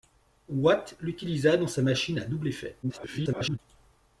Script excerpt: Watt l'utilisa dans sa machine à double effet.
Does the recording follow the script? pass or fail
fail